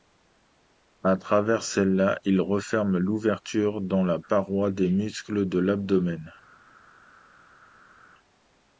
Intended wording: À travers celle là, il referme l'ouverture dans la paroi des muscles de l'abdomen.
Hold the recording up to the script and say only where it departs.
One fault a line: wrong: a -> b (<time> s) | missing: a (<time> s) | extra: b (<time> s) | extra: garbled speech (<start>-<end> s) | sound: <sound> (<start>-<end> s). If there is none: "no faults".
no faults